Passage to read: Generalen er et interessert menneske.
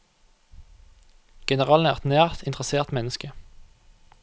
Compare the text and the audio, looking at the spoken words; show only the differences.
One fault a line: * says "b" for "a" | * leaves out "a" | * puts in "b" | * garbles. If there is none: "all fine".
* puts in "nært"